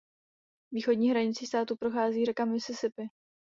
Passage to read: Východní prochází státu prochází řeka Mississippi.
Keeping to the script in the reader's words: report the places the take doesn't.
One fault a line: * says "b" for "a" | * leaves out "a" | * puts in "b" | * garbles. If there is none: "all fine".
* says "hranicí" for "prochází"